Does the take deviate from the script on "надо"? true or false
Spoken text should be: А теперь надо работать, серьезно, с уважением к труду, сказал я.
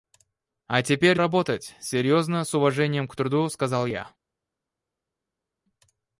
true